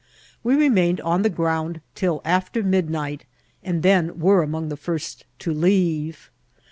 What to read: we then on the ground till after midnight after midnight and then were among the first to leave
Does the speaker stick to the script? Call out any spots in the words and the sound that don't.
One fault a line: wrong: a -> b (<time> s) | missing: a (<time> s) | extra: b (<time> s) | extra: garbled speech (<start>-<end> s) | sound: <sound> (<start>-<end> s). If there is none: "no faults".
wrong: then -> remained (0.6 s)
missing: after midnight (3.2 s)